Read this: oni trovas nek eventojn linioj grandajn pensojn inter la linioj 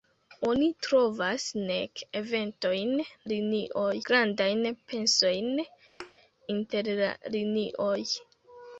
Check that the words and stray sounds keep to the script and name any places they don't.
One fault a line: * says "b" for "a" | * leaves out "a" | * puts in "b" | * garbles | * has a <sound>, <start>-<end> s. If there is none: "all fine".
* has a thud, 6.0-6.1 s